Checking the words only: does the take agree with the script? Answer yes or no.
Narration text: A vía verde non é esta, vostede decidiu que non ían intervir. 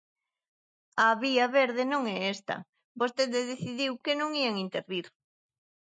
yes